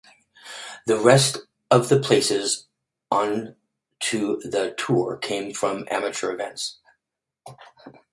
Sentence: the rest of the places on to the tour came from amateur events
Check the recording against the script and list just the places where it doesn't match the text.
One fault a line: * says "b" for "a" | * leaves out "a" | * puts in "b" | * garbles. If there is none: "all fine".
all fine